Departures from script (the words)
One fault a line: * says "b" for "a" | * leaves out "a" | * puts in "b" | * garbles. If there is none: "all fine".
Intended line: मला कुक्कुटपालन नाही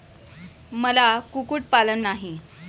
all fine